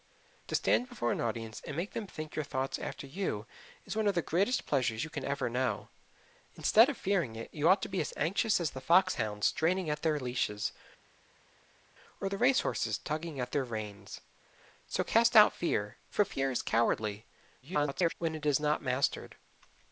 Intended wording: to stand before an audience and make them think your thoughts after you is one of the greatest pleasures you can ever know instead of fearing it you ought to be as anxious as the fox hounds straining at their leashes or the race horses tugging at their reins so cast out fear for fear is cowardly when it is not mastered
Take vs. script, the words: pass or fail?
fail